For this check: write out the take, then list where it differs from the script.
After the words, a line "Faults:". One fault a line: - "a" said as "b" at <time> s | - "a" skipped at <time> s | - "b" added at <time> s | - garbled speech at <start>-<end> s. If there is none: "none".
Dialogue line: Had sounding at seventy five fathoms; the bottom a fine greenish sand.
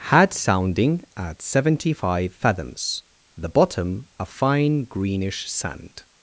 Had sounding at seventy five fathoms; the bottom a fine greenish sand.
Faults:
none